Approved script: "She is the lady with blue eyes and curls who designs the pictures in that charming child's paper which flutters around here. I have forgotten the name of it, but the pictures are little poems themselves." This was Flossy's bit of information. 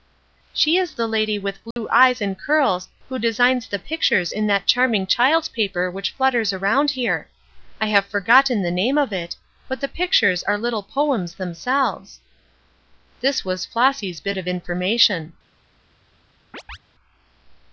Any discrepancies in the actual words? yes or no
no